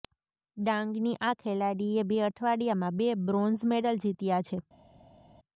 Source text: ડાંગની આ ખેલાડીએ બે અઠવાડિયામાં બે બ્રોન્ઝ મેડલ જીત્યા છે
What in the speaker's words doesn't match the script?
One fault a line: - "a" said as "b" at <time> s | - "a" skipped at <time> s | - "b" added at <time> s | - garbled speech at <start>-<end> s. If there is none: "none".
none